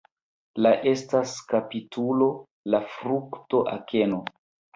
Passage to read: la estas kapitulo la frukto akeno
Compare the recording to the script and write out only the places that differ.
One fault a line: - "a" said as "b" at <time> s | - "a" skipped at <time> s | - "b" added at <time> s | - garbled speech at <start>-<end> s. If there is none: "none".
none